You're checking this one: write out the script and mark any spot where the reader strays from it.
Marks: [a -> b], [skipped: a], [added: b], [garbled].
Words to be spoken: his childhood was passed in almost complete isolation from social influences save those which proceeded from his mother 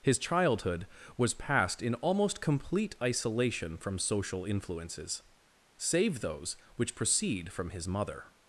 his childhood was passed in almost complete isolation from social influences save those which [proceeded -> proceed] from his mother